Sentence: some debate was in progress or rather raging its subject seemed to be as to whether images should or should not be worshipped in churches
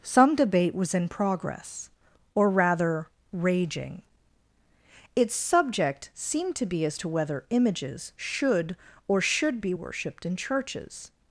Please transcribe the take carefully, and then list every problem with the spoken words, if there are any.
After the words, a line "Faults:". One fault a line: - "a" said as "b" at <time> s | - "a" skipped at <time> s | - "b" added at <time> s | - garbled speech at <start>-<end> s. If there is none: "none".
some debate was in progress or rather raging its subject seemed to be as to whether images should or should be worshipped in churches
Faults:
- "not" skipped at 9.6 s